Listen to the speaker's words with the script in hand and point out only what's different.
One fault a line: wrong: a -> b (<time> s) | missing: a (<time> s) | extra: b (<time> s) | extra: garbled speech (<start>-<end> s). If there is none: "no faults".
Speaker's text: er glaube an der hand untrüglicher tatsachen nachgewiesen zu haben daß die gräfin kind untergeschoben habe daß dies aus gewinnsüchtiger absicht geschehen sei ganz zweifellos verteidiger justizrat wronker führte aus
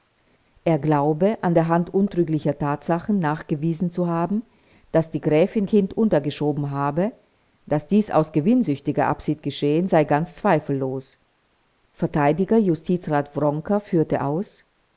no faults